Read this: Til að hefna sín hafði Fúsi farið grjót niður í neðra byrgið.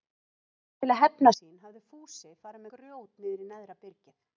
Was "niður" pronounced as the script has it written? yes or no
yes